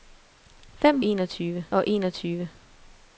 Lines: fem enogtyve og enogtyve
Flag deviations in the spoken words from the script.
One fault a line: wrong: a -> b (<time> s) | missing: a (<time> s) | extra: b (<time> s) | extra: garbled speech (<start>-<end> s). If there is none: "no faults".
no faults